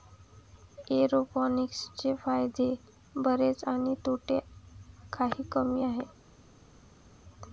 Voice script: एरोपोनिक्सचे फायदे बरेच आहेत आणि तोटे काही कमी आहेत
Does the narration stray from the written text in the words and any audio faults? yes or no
yes